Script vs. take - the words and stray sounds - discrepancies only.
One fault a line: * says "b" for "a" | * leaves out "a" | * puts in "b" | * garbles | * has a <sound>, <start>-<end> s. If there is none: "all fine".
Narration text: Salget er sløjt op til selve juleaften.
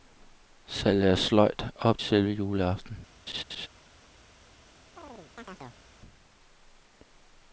* leaves out "til"
* has a laugh, 3.3-3.7 s
* has a chirp, 5.0-5.8 s